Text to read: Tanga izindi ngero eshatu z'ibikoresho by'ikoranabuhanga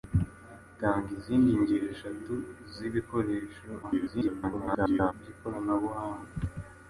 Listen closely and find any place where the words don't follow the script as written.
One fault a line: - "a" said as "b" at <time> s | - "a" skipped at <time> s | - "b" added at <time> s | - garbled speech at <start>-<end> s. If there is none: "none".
- garbled speech at 3.8-5.1 s